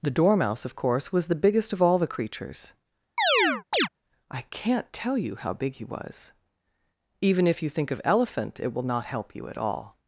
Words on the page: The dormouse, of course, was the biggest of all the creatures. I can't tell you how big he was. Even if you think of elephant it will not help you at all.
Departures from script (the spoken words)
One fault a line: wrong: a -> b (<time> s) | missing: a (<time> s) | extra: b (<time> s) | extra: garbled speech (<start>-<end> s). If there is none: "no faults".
no faults